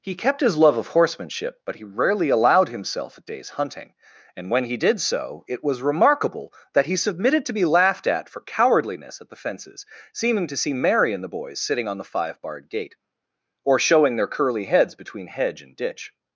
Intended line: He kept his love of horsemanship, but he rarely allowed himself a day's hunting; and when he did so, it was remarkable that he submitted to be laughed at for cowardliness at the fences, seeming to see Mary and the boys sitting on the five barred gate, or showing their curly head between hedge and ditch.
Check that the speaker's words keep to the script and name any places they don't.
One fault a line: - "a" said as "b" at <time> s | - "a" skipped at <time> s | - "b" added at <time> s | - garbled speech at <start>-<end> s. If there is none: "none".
- "head" said as "heads" at 14.7 s